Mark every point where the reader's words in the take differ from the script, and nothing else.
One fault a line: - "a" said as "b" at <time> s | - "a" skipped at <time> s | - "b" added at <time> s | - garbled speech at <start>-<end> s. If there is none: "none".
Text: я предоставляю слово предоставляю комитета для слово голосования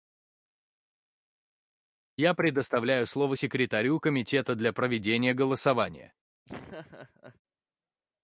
- "предоставляю" said as "секретарю" at 3.3 s
- "слово" said as "проведения" at 4.7 s